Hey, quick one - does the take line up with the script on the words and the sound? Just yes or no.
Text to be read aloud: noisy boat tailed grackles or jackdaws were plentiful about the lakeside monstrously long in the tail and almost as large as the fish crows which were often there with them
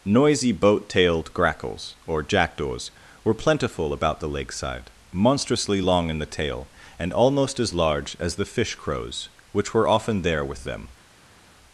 yes